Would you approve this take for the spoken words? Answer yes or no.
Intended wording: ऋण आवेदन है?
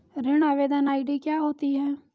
no